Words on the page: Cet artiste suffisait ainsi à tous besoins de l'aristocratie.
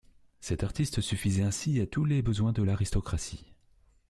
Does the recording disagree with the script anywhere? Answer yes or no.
yes